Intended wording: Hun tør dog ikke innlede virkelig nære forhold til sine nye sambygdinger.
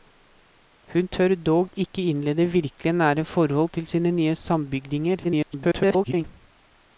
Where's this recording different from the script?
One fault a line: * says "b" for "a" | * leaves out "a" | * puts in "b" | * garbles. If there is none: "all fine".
* garbles